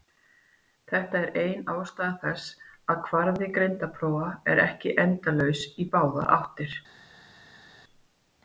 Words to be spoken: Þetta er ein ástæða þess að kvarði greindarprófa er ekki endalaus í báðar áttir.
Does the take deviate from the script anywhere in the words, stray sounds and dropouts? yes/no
no